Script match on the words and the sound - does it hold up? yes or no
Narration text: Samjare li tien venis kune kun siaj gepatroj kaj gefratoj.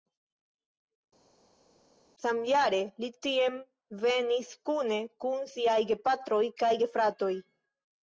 yes